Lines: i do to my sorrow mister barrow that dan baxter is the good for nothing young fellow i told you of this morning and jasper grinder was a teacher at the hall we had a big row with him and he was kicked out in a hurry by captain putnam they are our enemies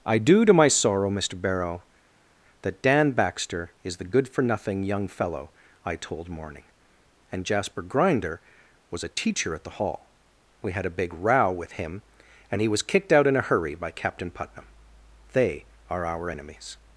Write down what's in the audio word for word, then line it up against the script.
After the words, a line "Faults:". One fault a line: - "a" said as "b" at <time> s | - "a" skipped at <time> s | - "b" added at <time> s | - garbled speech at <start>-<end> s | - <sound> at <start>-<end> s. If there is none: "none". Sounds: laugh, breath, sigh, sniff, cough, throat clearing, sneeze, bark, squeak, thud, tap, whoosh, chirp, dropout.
i do to my sorrow mister barrow that dan baxter is the good for nothing young fellow i told morning and jasper grinder was a teacher at the hall we had a big row with him and he was kicked out in a hurry by captain putnam they are our enemies
Faults:
- "you of this" skipped at 6.3 s